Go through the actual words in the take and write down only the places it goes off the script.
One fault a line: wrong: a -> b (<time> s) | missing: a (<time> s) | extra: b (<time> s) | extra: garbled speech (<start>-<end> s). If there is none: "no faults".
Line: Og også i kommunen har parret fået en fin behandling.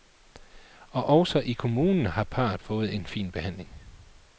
no faults